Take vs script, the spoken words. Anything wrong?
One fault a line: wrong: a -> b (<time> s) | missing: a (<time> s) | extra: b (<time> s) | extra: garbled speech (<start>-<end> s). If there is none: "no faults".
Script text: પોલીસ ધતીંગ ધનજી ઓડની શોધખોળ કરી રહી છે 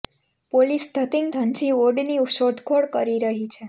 no faults